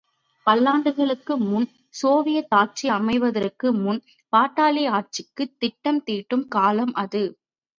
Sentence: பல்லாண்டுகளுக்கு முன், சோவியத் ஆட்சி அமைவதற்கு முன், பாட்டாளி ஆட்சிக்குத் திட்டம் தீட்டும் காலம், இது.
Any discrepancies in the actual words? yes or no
yes